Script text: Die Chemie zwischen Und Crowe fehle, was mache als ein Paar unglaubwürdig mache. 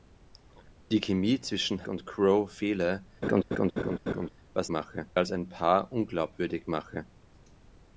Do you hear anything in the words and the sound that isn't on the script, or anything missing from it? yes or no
yes